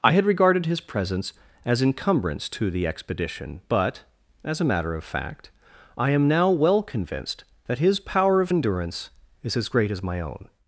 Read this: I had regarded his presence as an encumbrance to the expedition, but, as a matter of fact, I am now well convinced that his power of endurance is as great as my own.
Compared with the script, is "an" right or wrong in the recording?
wrong